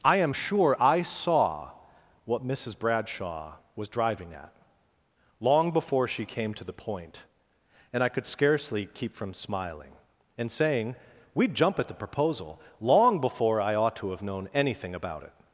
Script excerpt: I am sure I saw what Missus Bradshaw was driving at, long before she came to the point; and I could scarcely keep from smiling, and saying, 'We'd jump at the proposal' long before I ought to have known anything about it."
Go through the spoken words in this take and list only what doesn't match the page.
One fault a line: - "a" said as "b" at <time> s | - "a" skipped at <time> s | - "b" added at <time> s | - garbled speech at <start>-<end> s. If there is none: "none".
none